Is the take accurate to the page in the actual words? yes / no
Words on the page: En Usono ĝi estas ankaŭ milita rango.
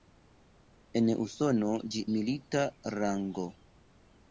no